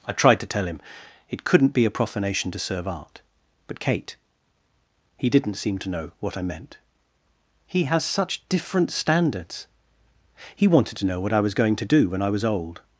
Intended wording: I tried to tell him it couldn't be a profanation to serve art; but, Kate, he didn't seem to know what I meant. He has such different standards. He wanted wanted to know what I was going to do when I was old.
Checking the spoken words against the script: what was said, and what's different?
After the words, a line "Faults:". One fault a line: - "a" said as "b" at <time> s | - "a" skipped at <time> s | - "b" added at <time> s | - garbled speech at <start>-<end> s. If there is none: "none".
I tried to tell him it couldn't be a profanation to serve art; but, Kate, he didn't seem to know what I meant. He has such different standards. He wanted to know what I was going to do when I was old.
Faults:
- "wanted" skipped at 11.0 s